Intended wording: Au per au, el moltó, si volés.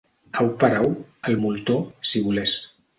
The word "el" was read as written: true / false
true